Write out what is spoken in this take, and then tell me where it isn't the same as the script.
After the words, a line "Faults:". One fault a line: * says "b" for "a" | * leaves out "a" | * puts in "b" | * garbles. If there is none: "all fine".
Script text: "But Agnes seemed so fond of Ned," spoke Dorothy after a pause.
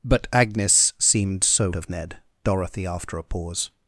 "But Agnes seemed so of Ned," Dorothy after a pause.
Faults:
* leaves out "fond"
* leaves out "spoke"